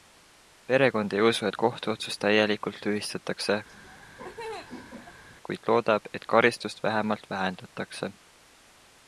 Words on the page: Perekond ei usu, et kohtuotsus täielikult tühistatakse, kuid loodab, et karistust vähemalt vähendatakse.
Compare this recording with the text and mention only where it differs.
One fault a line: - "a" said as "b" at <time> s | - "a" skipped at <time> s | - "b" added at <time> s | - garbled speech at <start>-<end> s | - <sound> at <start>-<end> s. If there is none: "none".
- laugh at 3.7-5.2 s